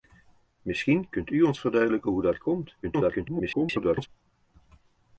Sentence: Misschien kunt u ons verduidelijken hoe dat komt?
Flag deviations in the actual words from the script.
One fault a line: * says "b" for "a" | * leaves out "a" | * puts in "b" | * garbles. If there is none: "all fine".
* garbles